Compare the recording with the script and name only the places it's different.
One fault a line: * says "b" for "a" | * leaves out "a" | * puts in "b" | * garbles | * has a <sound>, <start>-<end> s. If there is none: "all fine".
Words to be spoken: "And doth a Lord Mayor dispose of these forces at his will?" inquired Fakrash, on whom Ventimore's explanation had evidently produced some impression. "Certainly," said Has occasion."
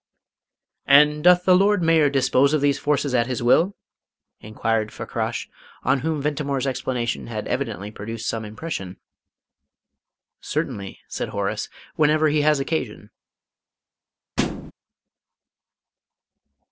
* says "the" for "a"
* puts in "Horace whenever he"
* has a thud, 14.4-14.7 s